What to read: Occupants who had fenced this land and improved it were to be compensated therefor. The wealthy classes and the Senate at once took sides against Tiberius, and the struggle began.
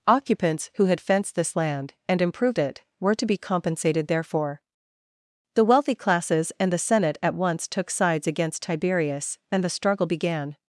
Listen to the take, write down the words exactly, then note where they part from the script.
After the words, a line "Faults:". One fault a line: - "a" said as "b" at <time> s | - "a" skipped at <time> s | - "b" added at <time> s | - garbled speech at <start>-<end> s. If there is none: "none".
Occupants who had fenced this land and improved it were to be compensated therefor. The wealthy classes and the Senate at once took sides against Tiberius, and the struggle began.
Faults:
none